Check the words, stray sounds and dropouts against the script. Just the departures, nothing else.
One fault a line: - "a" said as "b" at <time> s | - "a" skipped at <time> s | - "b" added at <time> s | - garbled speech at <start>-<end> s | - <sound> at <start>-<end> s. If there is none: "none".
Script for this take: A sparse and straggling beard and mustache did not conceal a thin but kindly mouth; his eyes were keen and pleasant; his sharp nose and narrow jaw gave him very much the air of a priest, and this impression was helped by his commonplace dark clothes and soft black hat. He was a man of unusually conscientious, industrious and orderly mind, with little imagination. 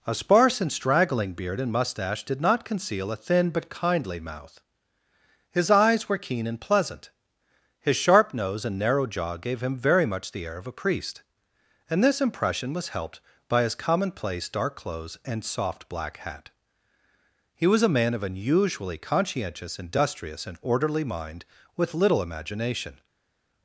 none